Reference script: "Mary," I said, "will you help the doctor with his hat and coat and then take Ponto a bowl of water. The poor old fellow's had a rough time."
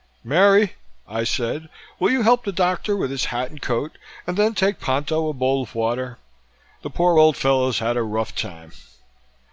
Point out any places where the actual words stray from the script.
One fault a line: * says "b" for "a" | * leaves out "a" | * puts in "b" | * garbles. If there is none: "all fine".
all fine